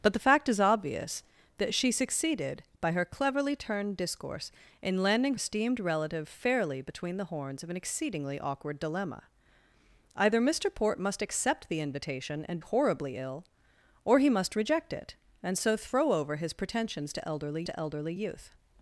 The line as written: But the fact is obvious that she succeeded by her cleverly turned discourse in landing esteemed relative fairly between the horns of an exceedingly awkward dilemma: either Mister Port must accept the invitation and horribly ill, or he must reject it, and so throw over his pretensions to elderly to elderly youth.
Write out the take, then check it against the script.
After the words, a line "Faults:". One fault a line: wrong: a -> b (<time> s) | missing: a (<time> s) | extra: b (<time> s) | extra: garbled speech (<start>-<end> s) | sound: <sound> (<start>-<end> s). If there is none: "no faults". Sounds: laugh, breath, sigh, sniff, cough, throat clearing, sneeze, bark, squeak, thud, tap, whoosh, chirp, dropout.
But the fact is obvious that she succeeded by her cleverly turned discourse in landing esteemed relative fairly between the horns of an exceedingly awkward dilemma: either Mister Port must accept the invitation and horribly ill, or he must reject it, and so throw over his pretensions to elderly to elderly youth.
Faults:
no faults